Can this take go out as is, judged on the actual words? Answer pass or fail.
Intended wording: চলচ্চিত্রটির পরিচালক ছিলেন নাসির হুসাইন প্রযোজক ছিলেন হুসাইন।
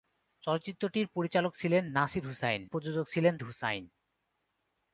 pass